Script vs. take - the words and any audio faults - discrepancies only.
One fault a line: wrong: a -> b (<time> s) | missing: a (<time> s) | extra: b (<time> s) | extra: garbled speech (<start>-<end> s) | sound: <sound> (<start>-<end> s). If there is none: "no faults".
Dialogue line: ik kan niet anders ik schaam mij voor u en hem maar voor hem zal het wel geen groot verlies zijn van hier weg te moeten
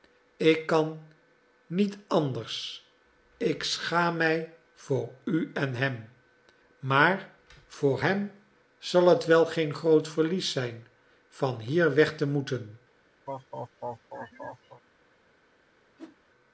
sound: laugh (13.3-14.8 s)
sound: whoosh (16.0-16.2 s)